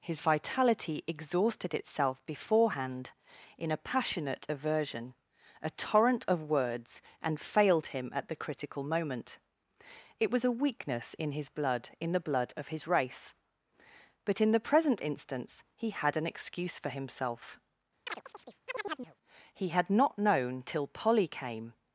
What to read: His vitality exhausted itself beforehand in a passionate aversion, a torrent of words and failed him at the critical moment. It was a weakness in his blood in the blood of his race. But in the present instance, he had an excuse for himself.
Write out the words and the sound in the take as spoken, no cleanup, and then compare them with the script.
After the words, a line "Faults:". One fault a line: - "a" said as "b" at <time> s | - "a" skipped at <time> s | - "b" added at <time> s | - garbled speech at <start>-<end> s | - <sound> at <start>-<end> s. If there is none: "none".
His vitality exhausted itself beforehand in a passionate aversion, a torrent of words and failed him at the critical moment. It was a weakness in his blood in the blood of his race. But in the present instance, he had an excuse for himself. He had not known till Polly came
Faults:
- chirp at 18.1-19.2 s
- "He had not known till Polly came" added at 19.5 s